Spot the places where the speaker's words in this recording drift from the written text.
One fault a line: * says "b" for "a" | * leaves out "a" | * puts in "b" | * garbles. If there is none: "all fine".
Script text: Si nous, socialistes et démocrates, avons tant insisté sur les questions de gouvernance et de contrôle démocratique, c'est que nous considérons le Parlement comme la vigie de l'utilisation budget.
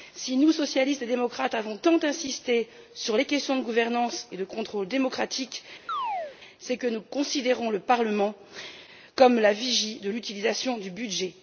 * puts in "du"